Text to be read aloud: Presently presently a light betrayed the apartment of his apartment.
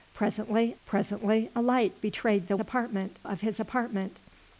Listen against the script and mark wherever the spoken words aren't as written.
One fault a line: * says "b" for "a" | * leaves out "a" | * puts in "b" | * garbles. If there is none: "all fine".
all fine